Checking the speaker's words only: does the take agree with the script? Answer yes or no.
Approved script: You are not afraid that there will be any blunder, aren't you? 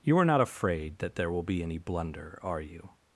no